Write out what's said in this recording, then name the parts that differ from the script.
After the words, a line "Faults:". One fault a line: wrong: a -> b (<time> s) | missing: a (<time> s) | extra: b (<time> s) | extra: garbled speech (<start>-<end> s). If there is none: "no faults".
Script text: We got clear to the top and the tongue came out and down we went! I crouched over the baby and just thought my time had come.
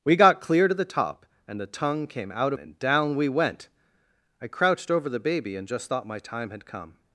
We got clear to the top and the tongue came out and down we went! I crouched over the baby and just thought my time had come.
Faults:
no faults